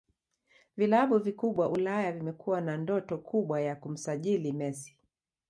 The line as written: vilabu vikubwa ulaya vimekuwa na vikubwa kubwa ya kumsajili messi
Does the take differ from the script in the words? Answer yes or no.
yes